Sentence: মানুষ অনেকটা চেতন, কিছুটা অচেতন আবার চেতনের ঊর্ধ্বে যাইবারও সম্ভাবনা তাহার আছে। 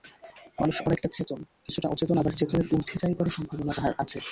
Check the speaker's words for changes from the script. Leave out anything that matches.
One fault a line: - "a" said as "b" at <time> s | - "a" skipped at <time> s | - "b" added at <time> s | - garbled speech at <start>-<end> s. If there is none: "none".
none